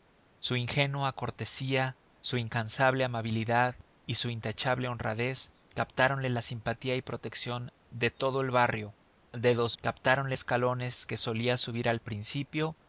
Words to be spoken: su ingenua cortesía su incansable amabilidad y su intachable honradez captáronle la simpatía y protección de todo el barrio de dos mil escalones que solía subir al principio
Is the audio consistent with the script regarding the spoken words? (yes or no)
no